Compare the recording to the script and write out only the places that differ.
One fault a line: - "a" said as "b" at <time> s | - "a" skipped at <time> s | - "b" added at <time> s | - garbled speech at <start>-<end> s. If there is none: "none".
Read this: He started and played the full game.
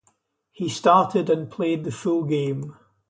none